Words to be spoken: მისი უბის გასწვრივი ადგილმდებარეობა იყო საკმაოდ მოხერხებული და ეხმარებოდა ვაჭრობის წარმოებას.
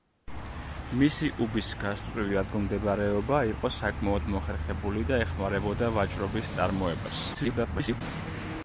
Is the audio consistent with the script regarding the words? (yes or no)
no